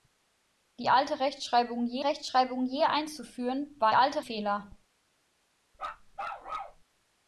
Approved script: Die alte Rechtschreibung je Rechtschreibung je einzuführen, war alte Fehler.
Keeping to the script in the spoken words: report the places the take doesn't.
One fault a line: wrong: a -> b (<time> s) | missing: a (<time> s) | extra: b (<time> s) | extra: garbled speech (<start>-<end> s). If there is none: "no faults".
no faults